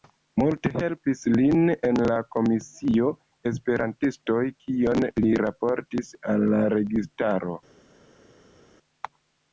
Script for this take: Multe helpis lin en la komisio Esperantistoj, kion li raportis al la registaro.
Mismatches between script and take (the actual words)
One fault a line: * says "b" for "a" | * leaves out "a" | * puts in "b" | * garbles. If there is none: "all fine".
all fine